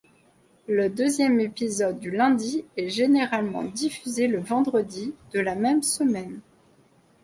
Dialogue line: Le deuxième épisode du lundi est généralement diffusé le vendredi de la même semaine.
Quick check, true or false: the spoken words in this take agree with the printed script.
true